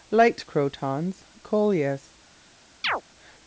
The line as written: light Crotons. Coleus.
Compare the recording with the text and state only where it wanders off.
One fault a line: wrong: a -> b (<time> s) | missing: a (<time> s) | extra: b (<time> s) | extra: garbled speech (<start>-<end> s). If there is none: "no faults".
no faults